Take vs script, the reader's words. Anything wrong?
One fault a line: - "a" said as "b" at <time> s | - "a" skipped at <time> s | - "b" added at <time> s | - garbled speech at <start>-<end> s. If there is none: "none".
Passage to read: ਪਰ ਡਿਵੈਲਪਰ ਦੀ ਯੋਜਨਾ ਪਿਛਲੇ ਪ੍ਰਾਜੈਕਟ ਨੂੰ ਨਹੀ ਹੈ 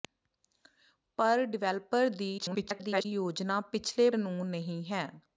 - garbled speech at 2.4-3.1 s
- "ਪ੍ਰਾਜੈਕਟ" skipped at 4.1 s